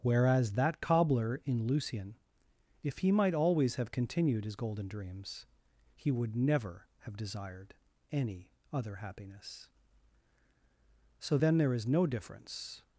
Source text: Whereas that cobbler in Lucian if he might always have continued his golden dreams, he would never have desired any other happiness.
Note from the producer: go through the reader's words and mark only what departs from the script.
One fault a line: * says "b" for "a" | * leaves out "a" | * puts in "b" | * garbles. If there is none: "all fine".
* puts in "So then there is no difference"